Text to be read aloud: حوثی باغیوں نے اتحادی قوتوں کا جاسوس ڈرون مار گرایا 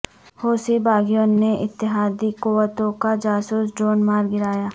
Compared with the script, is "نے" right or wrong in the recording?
right